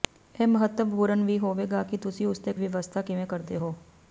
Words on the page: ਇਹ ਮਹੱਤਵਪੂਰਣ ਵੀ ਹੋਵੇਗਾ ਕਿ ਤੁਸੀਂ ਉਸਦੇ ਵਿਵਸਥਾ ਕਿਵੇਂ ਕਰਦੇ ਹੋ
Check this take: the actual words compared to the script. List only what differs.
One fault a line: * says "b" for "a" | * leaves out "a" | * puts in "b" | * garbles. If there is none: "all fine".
all fine